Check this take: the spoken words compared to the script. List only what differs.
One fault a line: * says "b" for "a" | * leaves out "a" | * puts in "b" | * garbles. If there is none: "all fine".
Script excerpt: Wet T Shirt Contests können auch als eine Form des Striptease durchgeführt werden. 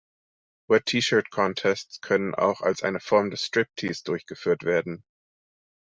all fine